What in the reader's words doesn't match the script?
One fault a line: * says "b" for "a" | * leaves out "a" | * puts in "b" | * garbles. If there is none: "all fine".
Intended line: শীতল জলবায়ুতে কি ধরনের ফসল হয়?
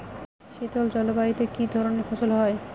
all fine